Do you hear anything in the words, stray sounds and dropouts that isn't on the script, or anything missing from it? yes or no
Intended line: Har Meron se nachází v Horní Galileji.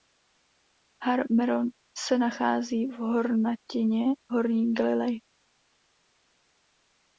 yes